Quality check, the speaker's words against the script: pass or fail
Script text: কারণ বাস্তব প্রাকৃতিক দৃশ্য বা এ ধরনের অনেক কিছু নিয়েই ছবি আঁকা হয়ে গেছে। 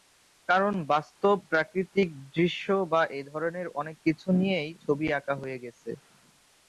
pass